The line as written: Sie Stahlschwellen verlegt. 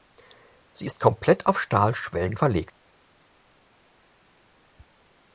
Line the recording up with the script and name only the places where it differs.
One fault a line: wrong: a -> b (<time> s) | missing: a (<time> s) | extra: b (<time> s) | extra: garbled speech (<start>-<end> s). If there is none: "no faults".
extra: ist komplett auf (0.8 s)